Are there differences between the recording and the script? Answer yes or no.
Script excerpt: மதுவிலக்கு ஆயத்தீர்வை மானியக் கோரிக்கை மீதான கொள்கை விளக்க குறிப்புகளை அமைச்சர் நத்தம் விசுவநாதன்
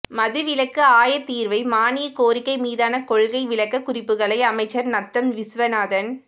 no